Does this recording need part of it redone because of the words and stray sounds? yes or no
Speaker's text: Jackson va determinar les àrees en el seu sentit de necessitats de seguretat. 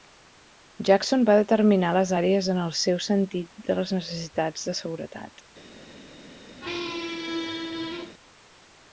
yes